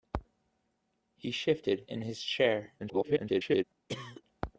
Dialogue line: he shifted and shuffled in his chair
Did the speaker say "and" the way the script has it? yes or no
no